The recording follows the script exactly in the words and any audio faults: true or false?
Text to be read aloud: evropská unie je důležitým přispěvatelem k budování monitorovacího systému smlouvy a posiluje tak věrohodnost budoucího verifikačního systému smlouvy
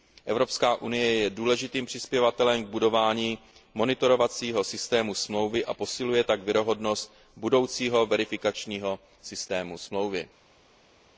true